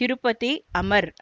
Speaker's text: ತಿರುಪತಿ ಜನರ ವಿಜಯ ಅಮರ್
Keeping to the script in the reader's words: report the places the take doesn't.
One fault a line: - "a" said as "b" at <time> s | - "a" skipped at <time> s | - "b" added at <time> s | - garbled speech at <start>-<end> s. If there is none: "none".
- "ಜನರ ವಿಜಯ" skipped at 0.5 s